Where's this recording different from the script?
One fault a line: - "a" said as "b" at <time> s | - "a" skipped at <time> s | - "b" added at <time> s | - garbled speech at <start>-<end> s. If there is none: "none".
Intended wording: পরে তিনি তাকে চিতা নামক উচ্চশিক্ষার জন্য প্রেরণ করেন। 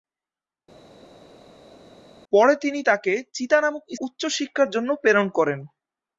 none